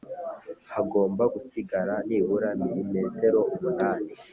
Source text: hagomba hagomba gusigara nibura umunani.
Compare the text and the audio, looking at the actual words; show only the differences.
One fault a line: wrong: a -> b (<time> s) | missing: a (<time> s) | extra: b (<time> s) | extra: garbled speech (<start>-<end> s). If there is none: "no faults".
missing: hagomba (1.2 s)
extra: milimetero (2.6 s)